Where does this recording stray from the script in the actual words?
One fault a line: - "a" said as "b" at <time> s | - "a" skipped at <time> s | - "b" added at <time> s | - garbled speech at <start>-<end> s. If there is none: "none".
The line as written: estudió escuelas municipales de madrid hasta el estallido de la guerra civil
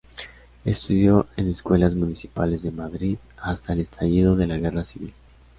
- "en" added at 1.4 s